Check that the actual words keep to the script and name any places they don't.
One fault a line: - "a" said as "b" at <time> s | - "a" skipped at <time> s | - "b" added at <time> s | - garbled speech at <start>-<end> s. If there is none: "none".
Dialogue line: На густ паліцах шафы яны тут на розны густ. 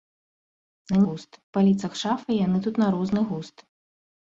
none